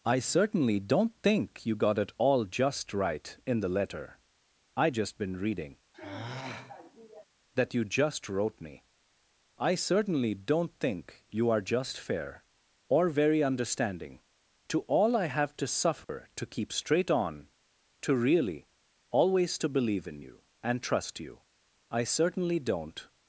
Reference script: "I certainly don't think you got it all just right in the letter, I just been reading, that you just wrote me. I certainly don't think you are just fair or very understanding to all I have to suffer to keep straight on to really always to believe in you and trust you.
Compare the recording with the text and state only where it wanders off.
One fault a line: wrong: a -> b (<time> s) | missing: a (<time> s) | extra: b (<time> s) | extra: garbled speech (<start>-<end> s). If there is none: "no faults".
extra: I certainly don't (21.9 s)